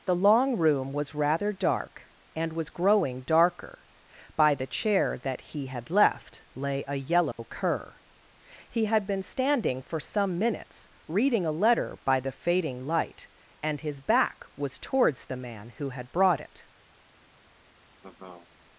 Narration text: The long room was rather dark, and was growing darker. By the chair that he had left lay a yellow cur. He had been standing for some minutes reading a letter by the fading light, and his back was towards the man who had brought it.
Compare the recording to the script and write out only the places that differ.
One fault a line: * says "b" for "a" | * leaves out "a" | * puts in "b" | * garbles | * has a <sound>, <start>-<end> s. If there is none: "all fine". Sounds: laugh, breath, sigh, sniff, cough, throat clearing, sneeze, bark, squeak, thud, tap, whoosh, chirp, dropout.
* has a dropout, 7.3-7.4 s
* has a laugh, 18.0-18.5 s